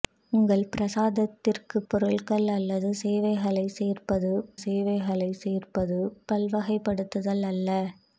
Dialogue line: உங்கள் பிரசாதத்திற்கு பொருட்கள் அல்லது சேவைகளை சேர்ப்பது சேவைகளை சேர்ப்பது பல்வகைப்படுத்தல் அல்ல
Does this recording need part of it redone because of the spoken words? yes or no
no